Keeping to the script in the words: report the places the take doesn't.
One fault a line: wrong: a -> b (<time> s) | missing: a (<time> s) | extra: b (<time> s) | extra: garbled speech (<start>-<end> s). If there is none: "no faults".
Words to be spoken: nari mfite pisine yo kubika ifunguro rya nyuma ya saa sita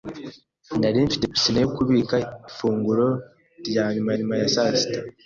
extra: nyuma (4.2 s)